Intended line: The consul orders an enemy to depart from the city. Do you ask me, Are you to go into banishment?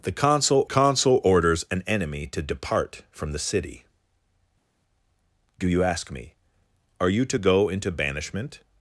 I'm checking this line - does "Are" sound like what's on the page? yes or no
yes